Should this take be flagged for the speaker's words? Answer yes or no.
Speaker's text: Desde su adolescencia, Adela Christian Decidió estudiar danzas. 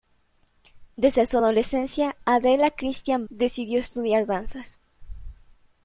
no